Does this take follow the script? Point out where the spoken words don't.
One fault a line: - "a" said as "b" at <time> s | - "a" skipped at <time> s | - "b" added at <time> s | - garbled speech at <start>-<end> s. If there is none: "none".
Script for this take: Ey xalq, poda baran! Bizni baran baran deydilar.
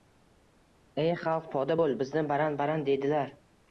- "baran" said as "bo‘l" at 1.8 s